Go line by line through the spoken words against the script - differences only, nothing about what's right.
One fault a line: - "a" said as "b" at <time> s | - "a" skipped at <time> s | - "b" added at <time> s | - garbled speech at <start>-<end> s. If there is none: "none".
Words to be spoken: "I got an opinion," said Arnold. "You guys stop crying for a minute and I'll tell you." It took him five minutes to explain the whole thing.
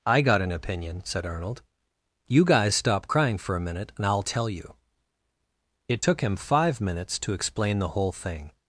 none